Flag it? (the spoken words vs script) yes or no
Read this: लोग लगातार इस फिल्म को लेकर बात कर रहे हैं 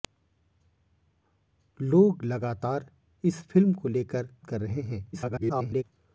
yes